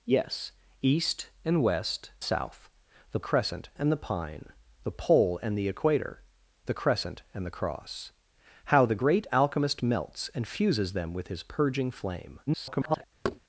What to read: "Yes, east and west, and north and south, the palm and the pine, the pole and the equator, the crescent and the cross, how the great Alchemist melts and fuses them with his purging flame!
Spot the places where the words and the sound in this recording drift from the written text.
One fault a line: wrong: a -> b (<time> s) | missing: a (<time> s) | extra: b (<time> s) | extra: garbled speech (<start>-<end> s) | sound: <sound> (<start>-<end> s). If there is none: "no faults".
missing: and north and (2.1 s)
wrong: palm -> crescent (3.2 s)
extra: garbled speech (12.5-13.0 s)
sound: thud (13.2-13.4 s)